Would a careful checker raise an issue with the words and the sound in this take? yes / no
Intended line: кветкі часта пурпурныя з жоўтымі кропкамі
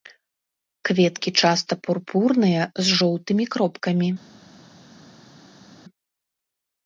no